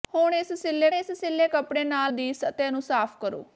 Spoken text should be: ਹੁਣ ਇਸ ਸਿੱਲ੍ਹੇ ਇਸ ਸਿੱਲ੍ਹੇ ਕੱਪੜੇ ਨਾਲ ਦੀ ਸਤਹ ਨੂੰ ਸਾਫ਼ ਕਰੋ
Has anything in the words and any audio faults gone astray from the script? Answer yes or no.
no